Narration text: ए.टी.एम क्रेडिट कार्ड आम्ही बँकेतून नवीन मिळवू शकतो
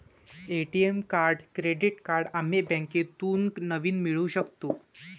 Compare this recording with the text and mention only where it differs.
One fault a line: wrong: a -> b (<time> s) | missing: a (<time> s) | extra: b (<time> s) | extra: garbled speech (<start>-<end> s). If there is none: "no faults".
extra: कार्ड (1.1 s)